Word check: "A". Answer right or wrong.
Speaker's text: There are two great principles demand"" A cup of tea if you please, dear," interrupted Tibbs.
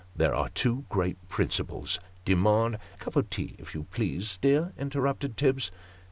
wrong